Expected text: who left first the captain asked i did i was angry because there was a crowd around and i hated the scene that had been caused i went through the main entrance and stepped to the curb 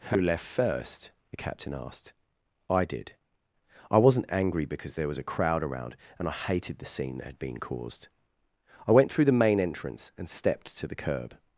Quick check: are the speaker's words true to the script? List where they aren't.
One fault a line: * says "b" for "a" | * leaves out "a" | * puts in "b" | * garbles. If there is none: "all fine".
* says "wasn't" for "was"